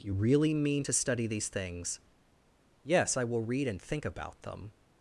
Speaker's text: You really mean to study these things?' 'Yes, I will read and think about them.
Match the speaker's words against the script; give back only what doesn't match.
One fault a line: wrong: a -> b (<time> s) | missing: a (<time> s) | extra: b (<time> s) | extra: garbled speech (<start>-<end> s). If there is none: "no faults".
no faults